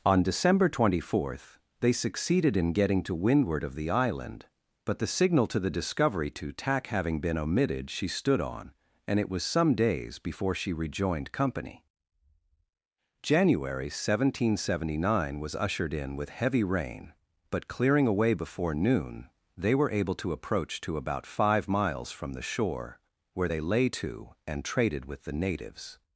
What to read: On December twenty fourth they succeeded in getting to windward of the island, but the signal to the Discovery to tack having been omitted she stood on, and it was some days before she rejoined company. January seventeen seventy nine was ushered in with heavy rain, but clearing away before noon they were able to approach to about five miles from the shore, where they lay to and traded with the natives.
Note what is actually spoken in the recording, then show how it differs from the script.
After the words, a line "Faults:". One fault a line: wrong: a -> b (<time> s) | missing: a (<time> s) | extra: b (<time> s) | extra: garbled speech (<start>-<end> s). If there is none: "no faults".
On December twenty fourth they succeeded in getting to windward of the island, but the signal to the Discovery to tack having been omitted she stood on, and it was some days before she rejoined company. January seventeen seventy nine was ushered in with heavy rain, but clearing away before noon they were able to approach to about five miles from the shore, where they lay to and traded with the natives.
Faults:
no faults